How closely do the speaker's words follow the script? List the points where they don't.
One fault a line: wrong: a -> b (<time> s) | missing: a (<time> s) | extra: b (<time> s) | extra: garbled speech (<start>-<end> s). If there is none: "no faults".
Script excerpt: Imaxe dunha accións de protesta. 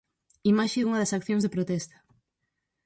extra: das (1.0 s)